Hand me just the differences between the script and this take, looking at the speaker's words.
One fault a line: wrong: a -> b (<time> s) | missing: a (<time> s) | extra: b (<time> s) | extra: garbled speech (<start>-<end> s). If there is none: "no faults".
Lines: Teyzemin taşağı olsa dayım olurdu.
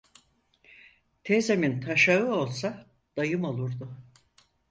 no faults